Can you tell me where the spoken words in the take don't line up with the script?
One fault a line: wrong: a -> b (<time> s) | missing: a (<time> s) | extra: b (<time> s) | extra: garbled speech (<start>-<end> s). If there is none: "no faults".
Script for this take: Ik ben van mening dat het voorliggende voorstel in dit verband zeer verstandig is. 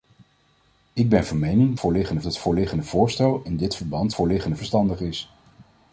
wrong: dat -> voorliggende (1.8 s)
wrong: zeer -> voorliggende (4.1 s)